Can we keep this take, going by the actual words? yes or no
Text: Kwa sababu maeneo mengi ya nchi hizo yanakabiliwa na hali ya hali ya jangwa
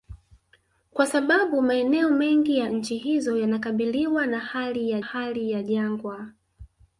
yes